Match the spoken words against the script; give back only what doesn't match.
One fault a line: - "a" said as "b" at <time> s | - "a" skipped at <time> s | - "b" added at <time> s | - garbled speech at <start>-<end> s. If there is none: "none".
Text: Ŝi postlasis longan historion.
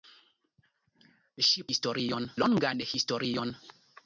- "postlasis" said as "historion" at 1.7 s